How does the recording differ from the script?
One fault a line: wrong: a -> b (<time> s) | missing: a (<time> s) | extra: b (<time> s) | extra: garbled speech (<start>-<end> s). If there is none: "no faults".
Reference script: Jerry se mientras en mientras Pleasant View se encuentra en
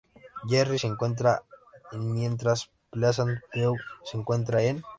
wrong: mientras -> encuentra (0.9 s)